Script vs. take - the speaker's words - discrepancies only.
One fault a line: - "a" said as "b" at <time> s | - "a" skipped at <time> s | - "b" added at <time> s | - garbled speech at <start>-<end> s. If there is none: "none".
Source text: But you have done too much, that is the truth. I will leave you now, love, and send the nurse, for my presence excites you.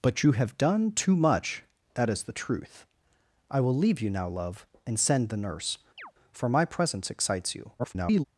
- garbled speech at 7.8-8.2 s